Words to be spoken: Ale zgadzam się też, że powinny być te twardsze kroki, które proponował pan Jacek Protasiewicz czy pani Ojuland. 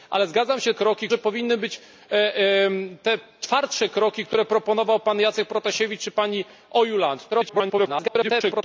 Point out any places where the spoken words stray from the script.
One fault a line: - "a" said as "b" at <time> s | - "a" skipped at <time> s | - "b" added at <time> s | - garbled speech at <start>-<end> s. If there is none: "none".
- "też" said as "kroki" at 0.7 s
- garbled speech at 7.3-8.6 s